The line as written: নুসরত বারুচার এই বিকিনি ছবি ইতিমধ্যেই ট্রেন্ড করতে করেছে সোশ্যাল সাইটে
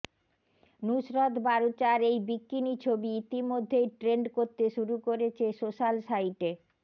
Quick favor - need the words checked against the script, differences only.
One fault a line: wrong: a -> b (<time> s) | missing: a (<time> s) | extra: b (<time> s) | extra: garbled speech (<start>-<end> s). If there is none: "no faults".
extra: শুরু (4.7 s)